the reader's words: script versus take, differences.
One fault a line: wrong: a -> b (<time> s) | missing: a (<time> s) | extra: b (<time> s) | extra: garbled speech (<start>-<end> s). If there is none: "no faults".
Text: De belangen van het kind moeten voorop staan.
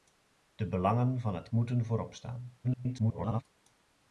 missing: kind (1.5 s)
extra: garbled speech (2.6-3.4 s)